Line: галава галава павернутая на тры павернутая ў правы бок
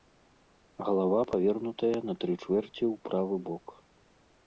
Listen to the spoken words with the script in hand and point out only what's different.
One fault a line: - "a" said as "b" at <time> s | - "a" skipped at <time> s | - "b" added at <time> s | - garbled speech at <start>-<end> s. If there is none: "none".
- "галава" skipped at 1.2 s
- "павернутая" said as "чвэрці" at 2.4 s